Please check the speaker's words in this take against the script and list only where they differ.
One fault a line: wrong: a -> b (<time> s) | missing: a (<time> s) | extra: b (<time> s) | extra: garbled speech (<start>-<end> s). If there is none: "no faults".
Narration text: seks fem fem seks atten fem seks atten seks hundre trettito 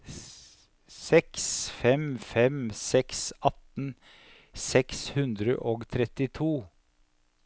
missing: fem (3.9 s)
wrong: atten seks hundre -> hundre og (5.2 s)